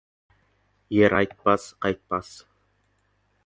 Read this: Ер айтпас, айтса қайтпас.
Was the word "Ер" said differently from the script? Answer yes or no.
no